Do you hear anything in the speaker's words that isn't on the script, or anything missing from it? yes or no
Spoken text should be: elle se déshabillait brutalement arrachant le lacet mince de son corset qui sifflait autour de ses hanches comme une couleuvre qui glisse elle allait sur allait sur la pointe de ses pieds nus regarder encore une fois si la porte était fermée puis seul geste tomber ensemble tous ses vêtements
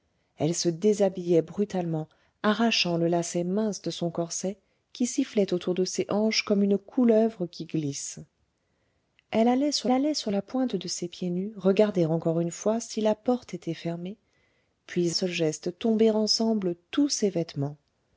no